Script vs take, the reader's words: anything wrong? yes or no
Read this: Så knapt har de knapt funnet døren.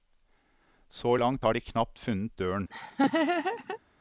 yes